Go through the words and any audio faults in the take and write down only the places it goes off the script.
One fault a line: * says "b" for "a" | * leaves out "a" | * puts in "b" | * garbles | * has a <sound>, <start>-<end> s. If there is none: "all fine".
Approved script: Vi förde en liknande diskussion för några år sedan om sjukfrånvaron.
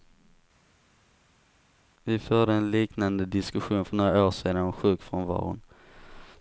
all fine